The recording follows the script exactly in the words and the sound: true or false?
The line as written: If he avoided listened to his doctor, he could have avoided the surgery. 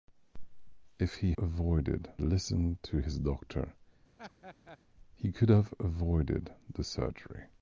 false